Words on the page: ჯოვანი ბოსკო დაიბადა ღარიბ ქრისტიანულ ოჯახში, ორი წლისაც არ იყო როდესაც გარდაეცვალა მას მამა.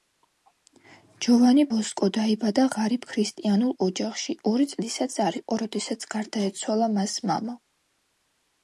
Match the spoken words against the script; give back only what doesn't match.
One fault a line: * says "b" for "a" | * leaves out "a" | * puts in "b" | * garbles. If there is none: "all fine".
all fine